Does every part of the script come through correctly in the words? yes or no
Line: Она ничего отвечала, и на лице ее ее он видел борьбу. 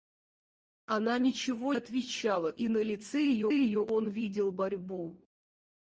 yes